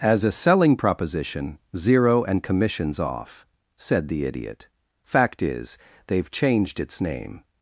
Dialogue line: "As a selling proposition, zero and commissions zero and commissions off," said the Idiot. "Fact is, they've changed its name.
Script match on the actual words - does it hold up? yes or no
no